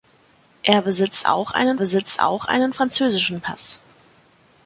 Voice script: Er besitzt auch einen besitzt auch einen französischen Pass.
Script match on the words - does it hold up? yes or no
yes